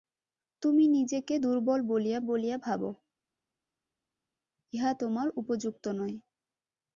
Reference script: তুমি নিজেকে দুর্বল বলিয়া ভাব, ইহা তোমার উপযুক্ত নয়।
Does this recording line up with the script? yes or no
no